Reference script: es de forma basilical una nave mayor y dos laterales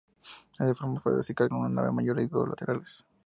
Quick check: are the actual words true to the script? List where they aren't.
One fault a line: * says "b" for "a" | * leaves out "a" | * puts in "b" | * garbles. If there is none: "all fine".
all fine